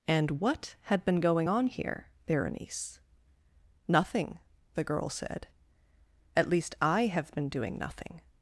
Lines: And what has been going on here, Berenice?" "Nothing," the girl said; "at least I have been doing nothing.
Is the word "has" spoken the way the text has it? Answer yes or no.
no